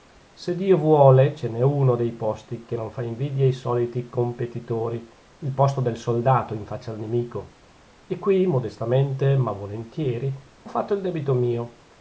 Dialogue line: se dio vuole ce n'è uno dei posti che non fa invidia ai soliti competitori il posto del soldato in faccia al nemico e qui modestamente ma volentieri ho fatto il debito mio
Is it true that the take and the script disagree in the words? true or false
false